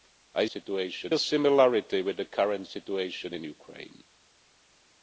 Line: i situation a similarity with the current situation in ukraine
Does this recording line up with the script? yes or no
yes